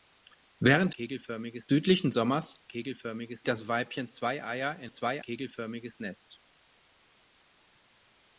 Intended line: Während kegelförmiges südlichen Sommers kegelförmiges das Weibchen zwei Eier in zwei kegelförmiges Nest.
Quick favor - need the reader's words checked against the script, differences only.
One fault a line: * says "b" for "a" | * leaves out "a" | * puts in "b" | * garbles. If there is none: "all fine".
all fine